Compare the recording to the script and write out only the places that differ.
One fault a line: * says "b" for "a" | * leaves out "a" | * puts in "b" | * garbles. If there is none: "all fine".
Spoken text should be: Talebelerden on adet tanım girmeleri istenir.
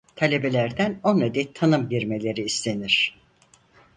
all fine